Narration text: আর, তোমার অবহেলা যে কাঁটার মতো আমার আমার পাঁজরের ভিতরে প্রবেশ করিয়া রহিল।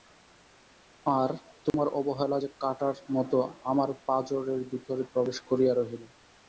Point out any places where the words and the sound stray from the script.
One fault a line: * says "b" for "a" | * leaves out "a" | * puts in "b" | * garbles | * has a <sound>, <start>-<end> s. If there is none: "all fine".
* has a dropout, 1.7-1.7 s
* leaves out "আমার"